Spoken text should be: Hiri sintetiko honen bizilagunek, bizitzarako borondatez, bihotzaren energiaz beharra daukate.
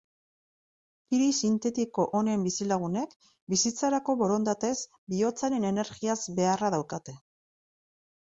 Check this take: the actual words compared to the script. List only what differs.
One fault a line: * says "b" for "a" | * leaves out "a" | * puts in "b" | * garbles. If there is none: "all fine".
all fine